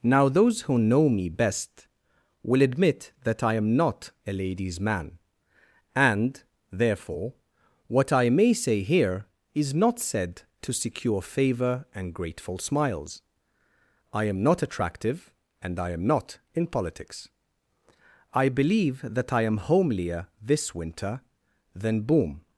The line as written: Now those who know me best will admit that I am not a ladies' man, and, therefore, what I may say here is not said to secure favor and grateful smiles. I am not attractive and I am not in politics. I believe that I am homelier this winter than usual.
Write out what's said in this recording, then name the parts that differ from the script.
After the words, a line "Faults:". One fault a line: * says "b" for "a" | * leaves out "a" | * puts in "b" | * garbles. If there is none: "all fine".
Now those who know me best will admit that I am not a ladies' man, and, therefore, what I may say here is not said to secure favor and grateful smiles. I am not attractive and I am not in politics. I believe that I am homelier this winter than boom.
Faults:
* says "boom" for "usual"